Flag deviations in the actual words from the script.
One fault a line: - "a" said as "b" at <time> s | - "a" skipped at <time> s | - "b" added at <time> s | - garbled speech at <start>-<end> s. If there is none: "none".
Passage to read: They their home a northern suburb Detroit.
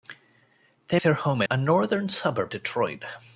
none